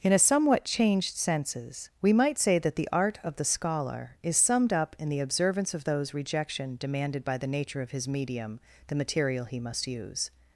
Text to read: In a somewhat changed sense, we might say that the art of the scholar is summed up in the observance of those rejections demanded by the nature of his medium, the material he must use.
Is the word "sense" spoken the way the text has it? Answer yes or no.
no